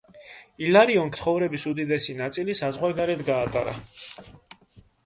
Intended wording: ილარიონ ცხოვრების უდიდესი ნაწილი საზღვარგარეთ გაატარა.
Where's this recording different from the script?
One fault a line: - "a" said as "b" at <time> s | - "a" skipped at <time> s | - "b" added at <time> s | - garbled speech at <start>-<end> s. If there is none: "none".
none